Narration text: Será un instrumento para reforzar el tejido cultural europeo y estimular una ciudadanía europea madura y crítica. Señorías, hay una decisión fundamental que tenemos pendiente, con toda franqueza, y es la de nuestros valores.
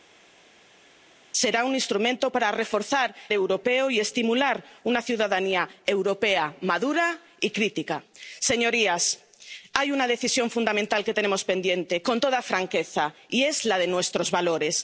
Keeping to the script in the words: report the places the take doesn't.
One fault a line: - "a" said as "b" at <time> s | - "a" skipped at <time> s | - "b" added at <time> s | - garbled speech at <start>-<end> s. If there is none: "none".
- "el tejido cultural" skipped at 3.1 s